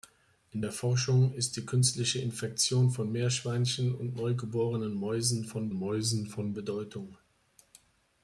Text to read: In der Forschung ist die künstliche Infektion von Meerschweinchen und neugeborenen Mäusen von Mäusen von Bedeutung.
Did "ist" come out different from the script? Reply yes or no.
no